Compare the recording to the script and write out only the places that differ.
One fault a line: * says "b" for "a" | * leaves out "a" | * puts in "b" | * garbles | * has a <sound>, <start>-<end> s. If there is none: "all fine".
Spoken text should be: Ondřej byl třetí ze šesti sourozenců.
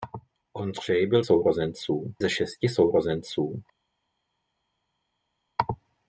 * says "sourozenců" for "třetí"